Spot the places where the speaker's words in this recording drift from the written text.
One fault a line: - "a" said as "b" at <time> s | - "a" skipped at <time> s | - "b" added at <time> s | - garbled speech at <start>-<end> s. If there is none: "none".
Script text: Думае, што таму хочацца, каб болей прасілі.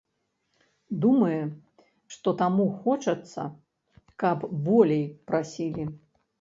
none